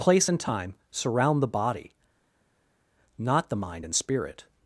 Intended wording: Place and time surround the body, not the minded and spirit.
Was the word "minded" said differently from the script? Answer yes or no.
yes